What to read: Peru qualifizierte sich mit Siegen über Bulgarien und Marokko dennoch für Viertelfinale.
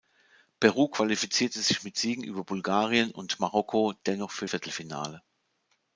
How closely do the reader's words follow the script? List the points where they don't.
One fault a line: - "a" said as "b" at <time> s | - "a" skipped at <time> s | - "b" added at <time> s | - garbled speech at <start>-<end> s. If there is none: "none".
none